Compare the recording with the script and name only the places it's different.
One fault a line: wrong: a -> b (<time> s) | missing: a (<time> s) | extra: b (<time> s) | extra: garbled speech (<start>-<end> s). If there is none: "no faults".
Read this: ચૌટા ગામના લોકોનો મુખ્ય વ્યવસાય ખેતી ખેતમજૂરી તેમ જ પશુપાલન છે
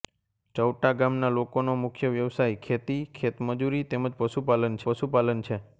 extra: પશુપાલન (4.9 s)